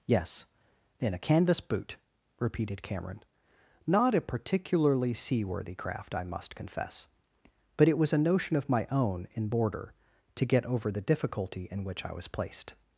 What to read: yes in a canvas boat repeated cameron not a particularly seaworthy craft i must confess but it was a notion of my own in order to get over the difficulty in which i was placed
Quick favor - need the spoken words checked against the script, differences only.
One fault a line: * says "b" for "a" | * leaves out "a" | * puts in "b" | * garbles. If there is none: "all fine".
* says "boot" for "boat"
* says "border" for "order"